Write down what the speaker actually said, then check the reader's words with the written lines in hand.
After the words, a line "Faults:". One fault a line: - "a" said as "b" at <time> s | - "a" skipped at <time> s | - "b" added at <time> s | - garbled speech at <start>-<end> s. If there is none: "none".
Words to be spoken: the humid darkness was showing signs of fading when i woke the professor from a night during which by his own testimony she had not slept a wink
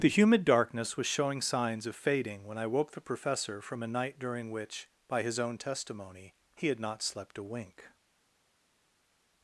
the humid darkness was showing signs of fading when i woke the professor from a night during which by his own testimony he had not slept a wink
Faults:
- "she" said as "he" at 6.5 s